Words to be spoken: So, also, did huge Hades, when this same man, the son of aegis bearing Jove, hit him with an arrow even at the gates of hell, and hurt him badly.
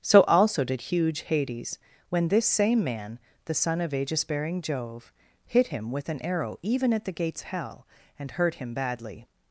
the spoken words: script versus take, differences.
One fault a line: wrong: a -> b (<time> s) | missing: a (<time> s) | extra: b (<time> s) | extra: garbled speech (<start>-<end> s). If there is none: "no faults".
missing: of (7.4 s)